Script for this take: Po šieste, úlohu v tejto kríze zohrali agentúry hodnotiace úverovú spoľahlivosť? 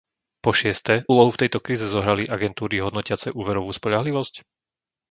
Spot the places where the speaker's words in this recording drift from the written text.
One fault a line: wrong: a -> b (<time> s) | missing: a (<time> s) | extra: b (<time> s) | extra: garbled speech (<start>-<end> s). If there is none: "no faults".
no faults